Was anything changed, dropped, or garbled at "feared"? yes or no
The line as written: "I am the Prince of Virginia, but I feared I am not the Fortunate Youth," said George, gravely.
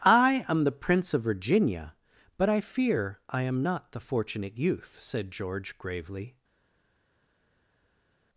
yes